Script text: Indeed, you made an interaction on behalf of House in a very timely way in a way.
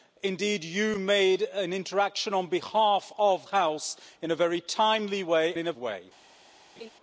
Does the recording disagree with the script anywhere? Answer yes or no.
no